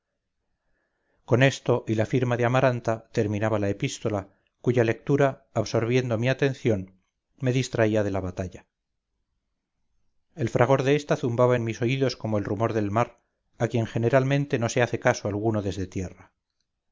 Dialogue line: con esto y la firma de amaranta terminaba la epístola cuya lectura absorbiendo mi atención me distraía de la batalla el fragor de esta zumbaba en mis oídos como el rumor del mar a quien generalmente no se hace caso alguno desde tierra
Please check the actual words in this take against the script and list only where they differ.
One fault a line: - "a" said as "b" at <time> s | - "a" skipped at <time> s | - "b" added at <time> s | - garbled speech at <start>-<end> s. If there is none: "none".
none